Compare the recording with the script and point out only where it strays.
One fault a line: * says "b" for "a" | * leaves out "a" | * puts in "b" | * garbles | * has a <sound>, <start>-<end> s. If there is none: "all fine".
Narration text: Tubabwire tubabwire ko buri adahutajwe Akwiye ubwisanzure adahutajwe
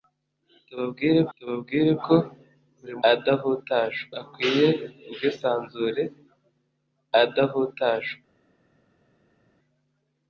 all fine